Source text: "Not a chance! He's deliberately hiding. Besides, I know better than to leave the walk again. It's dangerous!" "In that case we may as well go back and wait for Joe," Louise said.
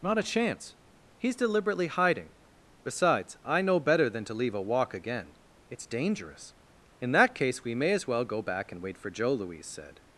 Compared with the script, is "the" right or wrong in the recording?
wrong